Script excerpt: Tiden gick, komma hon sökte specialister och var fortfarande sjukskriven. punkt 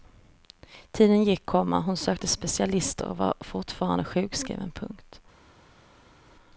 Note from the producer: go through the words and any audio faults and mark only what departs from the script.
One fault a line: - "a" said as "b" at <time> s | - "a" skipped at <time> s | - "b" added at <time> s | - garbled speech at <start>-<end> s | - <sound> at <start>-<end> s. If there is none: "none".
none